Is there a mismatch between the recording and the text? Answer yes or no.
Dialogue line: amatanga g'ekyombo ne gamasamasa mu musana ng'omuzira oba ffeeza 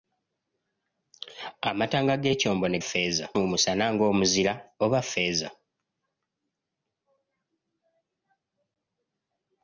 yes